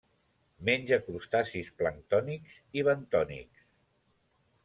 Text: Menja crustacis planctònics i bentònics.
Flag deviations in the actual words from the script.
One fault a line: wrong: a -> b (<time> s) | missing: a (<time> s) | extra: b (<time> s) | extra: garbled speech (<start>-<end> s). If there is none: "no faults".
no faults